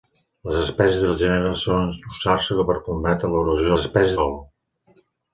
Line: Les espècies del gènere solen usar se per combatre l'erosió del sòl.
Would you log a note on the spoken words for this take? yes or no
yes